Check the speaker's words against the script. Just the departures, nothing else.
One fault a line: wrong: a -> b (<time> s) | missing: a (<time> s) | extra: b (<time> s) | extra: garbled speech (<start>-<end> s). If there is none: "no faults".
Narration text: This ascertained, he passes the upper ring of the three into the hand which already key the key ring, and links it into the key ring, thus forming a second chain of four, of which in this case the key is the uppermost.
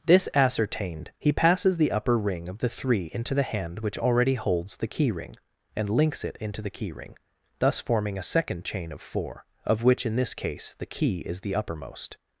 wrong: key -> holds (4.3 s)